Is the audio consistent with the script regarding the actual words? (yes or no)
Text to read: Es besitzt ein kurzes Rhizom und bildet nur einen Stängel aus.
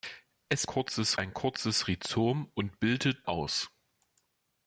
no